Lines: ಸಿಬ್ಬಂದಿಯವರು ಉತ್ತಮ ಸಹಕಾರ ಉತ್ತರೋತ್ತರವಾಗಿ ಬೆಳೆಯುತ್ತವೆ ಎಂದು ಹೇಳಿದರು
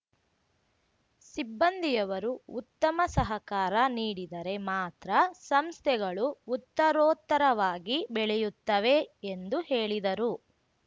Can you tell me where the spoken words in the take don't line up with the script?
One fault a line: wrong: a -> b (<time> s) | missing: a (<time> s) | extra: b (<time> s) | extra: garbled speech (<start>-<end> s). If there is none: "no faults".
extra: ನೀಡಿದರೆ ಮಾತ್ರ ಸಂಸ್ಥೆಗಳು (3.9 s)